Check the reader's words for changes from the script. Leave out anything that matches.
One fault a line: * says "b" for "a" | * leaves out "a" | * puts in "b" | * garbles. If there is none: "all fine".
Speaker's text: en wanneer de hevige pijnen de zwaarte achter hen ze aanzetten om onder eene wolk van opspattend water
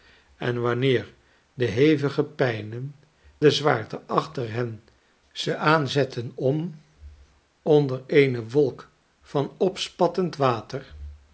all fine